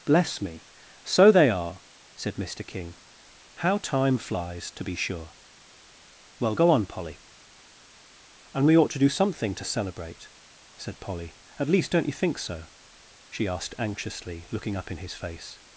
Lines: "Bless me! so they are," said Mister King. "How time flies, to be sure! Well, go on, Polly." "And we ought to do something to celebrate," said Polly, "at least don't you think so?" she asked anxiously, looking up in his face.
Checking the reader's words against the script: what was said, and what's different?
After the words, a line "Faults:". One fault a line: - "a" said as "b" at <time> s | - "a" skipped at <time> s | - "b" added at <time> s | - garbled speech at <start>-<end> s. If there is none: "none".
"Bless me! so they are," said Mister King. "How time flies, to be sure! Well, go on, Polly." "And we ought to do something to celebrate," said Polly, "at least don't you think so?" she asked anxiously, looking up in his face.
Faults:
none